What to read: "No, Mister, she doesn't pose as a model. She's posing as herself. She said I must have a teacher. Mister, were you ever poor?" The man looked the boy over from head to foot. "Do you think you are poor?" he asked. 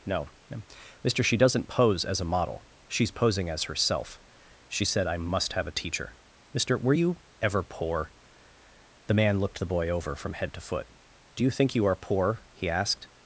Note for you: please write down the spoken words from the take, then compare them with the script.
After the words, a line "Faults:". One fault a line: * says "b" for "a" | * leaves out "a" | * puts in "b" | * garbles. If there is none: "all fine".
"No, Mister, she doesn't pose as a model. She's posing as herself. She said I must have a teacher. Mister, were you ever poor?" The man looked the boy over from head to foot. "Do you think you are poor?" he asked.
Faults:
all fine